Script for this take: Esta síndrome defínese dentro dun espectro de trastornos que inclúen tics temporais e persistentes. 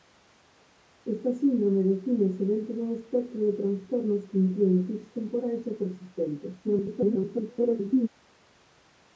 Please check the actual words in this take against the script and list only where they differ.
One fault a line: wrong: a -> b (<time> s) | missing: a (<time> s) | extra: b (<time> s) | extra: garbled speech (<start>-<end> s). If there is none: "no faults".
extra: garbled speech (6.6-8.1 s)